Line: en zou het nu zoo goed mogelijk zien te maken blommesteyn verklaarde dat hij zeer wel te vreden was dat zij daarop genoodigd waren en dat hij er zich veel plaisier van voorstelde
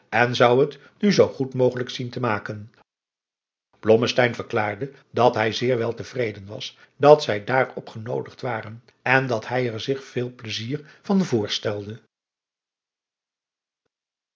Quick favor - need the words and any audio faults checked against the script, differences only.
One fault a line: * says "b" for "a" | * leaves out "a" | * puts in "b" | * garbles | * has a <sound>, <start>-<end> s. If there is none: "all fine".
all fine